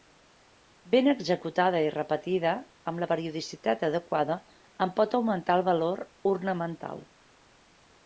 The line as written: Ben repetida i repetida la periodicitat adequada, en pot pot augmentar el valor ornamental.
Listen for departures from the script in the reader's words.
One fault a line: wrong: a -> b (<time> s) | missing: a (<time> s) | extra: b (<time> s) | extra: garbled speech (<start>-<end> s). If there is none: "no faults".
wrong: repetida -> executada (1.1 s)
extra: amb (2.9 s)
missing: pot (5.2 s)